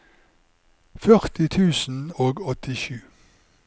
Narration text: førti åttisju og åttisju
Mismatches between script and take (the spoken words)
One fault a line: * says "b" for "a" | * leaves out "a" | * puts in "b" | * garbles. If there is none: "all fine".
* says "tusen" for "åttisju"